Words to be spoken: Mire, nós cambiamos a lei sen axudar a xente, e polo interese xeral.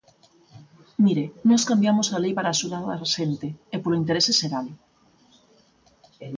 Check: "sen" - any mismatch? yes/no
yes